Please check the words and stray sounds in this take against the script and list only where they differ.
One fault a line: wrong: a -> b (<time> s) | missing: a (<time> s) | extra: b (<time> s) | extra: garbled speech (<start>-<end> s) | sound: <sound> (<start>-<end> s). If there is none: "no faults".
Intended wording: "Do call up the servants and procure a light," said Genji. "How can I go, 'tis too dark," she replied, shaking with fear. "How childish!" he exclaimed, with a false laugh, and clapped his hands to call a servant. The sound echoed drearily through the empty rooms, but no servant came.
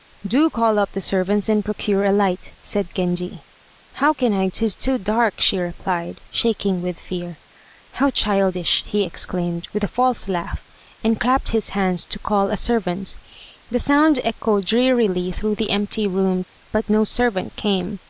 missing: go (4.5 s)
sound: dropout (16.4-16.6 s)